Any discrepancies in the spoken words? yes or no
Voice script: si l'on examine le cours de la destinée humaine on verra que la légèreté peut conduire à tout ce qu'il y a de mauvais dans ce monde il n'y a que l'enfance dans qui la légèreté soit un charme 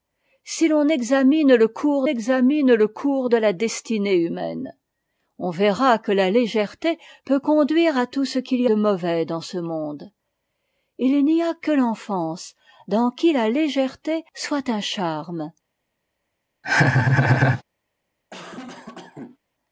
yes